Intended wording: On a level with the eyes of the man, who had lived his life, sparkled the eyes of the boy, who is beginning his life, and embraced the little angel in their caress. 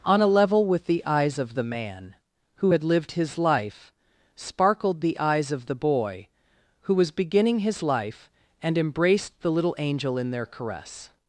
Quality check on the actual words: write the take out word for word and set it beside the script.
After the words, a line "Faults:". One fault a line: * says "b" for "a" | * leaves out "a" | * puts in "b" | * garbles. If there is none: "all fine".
On a level with the eyes of the man, who had lived his life, sparkled the eyes of the boy, who was beginning his life, and embraced the little angel in their caress.
Faults:
* says "was" for "is"